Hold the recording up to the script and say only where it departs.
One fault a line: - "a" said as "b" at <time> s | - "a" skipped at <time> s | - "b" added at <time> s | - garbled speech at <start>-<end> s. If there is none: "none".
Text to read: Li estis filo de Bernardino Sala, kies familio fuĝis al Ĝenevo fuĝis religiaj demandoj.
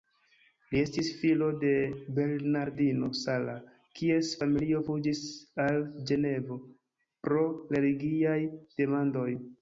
- "fuĝis" said as "pro" at 7.3 s